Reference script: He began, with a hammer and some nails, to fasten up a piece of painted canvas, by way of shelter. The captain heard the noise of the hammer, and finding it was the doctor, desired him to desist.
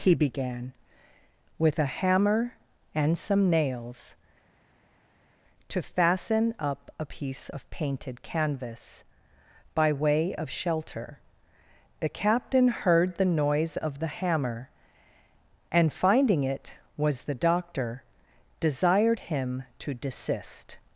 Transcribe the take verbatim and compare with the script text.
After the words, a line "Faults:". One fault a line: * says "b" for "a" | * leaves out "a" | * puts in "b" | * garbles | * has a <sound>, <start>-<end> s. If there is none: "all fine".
He began, with a hammer and some nails, to fasten up a piece of painted canvas, by way of shelter. The captain heard the noise of the hammer, and finding it was the doctor, desired him to desist.
Faults:
all fine